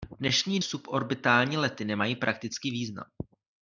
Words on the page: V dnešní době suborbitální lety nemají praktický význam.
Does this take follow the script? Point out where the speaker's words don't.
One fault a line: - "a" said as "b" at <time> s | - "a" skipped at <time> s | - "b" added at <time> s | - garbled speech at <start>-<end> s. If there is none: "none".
- "době" skipped at 0.6 s